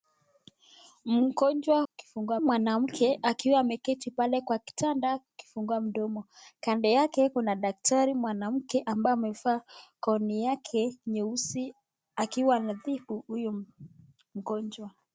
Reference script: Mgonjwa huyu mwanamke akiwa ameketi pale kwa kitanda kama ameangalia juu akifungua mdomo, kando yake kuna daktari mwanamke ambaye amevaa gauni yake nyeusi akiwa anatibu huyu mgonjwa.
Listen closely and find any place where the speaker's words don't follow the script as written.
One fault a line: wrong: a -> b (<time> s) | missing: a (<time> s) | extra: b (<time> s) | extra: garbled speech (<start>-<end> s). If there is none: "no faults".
wrong: huyu -> akifungua (1.9 s)
missing: kama ameangalia juu (5.2 s)